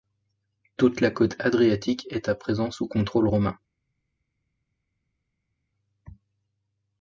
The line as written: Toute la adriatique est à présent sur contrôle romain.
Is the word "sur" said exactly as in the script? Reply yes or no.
no